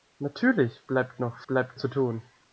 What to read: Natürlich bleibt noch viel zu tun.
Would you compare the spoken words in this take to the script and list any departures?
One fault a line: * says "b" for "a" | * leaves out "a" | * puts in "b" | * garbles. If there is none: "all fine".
* says "bleibt" for "viel"